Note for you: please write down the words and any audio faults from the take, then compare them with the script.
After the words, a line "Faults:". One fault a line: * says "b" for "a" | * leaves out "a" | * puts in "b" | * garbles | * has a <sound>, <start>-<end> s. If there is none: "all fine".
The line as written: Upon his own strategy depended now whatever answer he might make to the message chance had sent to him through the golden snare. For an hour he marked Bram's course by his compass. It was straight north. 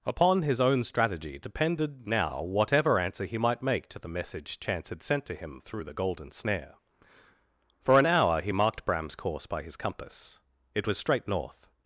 Upon his own strategy depended now whatever answer he might make to the message chance had sent to him through the golden snare. For an hour he marked Bram's course by his compass. It was straight north.
Faults:
all fine